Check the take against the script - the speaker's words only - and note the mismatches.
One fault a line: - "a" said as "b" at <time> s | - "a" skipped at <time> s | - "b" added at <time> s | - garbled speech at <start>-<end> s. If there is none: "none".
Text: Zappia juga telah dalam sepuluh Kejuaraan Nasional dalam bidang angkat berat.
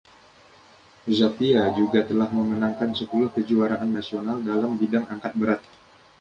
- "dalam" said as "memenangkan" at 2.3 s